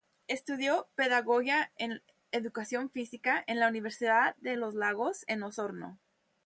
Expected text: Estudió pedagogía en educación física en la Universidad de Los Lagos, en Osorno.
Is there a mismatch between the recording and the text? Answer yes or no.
no